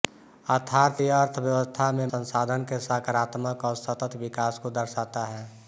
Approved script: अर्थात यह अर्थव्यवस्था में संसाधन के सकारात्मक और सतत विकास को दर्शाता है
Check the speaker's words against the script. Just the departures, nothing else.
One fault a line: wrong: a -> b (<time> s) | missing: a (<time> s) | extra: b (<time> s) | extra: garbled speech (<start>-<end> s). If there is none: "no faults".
no faults